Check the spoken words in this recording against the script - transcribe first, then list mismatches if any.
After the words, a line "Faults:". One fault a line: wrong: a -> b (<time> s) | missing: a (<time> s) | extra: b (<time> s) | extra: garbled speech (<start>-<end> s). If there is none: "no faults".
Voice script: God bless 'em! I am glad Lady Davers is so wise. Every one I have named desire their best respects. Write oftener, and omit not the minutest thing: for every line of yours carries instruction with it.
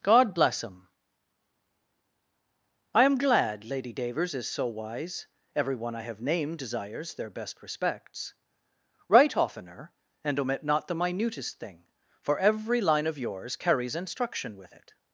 God bless 'em! I am glad Lady Davers is so wise. Every one I have named desires their best respects. Write oftener, and omit not the minutest thing: for every line of yours carries instruction with it.
Faults:
wrong: desire -> desires (6.6 s)